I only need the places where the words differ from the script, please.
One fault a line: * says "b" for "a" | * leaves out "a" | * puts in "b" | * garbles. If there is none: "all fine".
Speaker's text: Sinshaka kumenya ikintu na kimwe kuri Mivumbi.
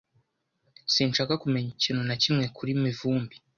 all fine